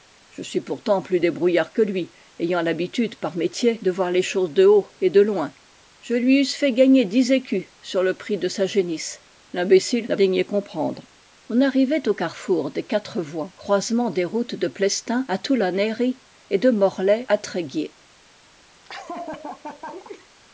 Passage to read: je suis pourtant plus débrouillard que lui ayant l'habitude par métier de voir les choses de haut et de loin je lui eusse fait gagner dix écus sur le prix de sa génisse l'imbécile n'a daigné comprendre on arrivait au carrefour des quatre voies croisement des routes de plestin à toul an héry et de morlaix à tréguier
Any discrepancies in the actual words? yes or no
no